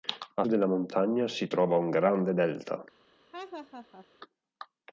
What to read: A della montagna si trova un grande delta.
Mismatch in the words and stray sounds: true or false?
true